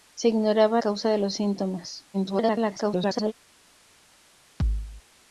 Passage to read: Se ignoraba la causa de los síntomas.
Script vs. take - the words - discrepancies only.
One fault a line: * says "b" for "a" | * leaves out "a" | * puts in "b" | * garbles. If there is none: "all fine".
* leaves out "la"
* garbles